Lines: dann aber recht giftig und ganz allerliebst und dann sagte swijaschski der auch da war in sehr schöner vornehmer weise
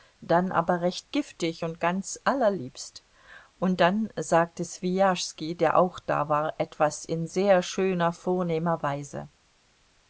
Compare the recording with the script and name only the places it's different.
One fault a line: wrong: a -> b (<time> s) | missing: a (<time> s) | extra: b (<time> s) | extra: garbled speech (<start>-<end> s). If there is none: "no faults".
extra: etwas (6.6 s)